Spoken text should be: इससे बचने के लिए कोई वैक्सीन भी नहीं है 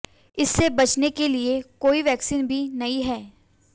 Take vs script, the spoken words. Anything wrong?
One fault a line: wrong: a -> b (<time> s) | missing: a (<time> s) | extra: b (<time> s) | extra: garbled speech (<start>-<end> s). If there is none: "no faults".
no faults